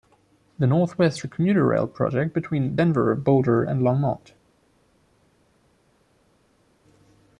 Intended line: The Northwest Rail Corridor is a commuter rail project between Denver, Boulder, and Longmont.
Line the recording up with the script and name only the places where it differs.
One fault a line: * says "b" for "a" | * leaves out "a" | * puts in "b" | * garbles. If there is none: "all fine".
* leaves out "Rail Corridor is"